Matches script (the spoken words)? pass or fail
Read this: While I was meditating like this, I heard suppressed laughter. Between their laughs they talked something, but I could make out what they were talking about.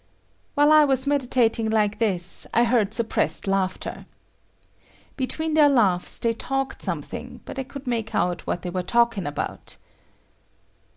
pass